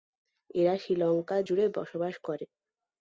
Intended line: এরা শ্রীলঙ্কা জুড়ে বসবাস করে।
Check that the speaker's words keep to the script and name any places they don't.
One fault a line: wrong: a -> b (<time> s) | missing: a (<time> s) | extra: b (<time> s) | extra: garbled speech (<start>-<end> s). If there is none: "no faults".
no faults